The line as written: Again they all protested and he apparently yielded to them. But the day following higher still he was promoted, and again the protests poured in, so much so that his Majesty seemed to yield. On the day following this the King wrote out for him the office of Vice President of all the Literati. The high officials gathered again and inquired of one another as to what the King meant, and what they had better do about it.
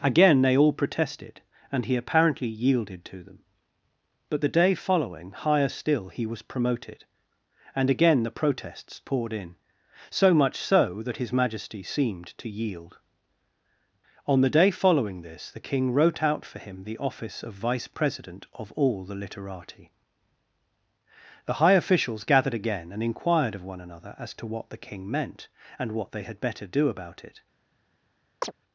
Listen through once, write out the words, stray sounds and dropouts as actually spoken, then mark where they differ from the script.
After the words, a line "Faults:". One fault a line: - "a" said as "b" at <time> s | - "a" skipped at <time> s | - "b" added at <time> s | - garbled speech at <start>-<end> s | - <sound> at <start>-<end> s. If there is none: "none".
Again they all protested and he apparently yielded to them. But the day following higher still he was promoted, and again the protests poured in, so much so that his Majesty seemed to yield. On the day following this the King wrote out for him the office of Vice President of all the Literati. The high officials gathered again and inquired of one another as to what the King meant, and what they had better do about it.
Faults:
- chirp at 28.4-28.5 s